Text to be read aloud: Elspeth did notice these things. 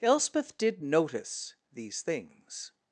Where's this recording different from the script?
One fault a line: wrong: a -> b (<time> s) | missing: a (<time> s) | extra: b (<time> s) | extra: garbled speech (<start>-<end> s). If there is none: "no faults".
no faults